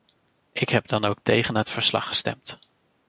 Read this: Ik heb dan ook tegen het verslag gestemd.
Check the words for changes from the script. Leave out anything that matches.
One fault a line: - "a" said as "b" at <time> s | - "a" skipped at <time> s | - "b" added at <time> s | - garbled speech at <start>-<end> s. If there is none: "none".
none